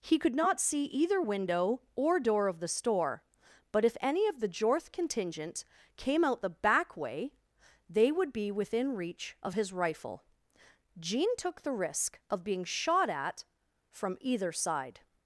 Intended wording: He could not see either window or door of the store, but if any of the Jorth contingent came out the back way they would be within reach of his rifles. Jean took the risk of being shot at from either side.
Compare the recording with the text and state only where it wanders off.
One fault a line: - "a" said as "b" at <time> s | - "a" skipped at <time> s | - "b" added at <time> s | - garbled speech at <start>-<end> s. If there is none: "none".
- "rifles" said as "rifle" at 9.7 s